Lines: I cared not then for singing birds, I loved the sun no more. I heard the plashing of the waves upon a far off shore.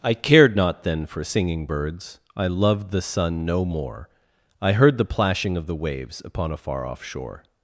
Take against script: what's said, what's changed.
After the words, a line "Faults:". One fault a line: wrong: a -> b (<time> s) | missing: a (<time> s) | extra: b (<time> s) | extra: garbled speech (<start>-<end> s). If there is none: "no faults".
I cared not then for singing birds, I loved the sun no more. I heard the plashing of the waves upon a far off shore.
Faults:
no faults